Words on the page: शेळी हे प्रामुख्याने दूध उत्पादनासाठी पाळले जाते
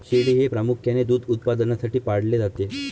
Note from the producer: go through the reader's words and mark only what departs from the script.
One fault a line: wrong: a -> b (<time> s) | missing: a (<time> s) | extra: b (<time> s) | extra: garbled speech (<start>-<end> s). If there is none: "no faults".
no faults